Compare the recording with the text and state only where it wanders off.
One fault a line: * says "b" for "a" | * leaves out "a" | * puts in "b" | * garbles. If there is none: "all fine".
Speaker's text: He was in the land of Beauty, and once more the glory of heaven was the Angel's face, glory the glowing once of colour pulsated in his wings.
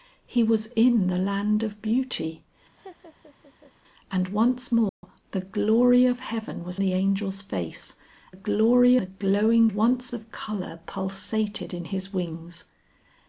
all fine